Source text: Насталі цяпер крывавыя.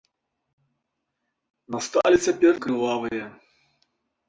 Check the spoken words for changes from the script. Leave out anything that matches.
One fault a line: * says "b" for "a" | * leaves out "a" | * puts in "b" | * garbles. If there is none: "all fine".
all fine